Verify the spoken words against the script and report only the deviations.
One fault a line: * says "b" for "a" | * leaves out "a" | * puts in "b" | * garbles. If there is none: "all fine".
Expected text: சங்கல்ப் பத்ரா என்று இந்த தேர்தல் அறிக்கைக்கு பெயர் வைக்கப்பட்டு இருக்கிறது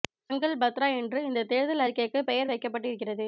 all fine